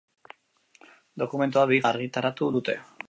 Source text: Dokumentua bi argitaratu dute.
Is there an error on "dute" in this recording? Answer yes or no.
no